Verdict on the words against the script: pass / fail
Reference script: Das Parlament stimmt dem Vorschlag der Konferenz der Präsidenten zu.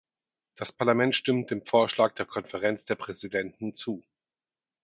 pass